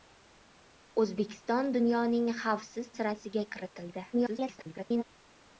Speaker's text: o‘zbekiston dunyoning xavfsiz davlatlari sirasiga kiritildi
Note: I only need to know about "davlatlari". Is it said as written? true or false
false